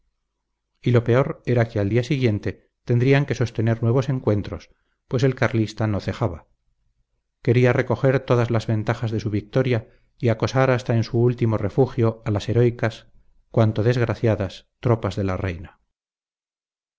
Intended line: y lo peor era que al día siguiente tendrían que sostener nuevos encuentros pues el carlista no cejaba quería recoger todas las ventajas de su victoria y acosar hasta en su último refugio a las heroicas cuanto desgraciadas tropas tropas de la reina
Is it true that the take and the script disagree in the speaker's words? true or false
true